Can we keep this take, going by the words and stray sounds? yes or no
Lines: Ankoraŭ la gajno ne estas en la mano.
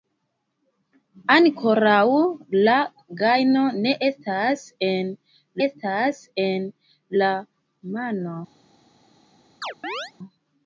no